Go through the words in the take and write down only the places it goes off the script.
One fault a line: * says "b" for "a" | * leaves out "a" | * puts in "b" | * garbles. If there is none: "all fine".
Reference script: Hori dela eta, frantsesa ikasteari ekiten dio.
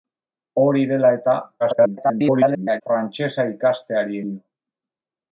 * garbles
* leaves out "ekiten"